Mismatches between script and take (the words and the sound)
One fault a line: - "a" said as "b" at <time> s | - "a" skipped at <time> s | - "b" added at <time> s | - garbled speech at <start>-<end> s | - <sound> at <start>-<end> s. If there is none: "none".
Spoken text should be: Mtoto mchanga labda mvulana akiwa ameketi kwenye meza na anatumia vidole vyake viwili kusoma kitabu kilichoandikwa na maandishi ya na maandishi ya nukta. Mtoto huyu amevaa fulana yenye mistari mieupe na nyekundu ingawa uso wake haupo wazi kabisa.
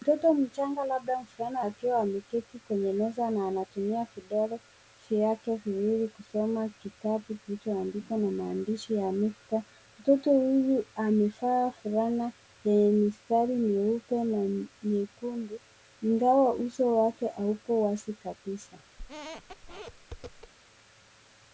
- "na maandishi ya" skipped at 9.1 s
- squeak at 19.0-20.5 s